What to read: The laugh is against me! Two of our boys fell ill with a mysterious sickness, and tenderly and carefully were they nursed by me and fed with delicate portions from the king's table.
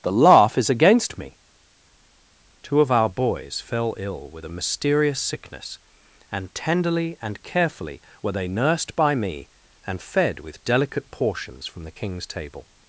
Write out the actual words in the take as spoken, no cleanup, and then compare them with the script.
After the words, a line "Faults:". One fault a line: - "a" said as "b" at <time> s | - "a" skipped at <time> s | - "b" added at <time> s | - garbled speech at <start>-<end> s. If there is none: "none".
The laugh is against me! Two of our boys fell ill with a mysterious sickness, and tenderly and carefully were they nursed by me and fed with delicate portions from the king's table.
Faults:
none